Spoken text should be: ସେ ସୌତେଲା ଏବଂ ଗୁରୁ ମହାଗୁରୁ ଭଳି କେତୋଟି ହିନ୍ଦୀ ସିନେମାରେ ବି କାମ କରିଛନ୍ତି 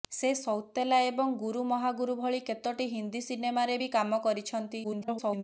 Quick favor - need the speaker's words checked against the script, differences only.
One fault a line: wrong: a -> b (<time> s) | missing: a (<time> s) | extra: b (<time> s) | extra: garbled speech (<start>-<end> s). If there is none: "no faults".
extra: garbled speech (4.8-5.4 s)